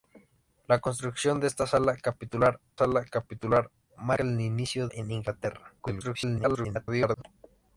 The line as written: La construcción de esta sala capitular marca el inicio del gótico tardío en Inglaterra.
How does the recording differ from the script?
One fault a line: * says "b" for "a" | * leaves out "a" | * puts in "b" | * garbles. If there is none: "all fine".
* puts in "sala capitular"
* leaves out "del gótico tardío"
* garbles